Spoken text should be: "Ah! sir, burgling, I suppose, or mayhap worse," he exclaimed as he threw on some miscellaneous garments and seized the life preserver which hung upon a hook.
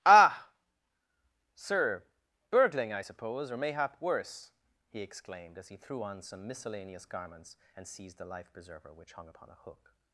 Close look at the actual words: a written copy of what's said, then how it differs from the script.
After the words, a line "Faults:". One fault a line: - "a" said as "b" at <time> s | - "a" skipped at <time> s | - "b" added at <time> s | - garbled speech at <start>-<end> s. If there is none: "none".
"Ah! sir, burgling, I suppose, or mayhap worse," he exclaimed as he threw on some miscellaneous garments and seized the life preserver which hung upon a hook.
Faults:
none